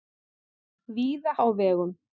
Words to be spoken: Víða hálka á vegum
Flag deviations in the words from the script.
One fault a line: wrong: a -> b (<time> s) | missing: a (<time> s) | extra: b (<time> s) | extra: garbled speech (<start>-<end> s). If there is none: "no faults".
missing: hálka (1.3 s)